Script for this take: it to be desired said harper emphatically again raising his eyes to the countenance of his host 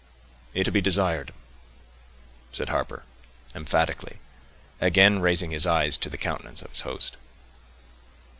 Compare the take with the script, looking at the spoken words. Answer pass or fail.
pass